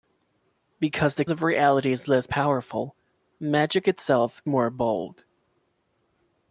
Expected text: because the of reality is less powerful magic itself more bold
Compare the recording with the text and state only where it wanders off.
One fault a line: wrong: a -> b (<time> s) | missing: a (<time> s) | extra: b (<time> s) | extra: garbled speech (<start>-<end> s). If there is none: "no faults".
no faults